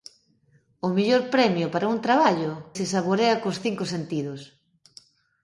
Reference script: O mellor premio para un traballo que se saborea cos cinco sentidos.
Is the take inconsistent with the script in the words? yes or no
yes